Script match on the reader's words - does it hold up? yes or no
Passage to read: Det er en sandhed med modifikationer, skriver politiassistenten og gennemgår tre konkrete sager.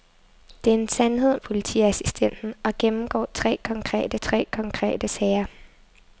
no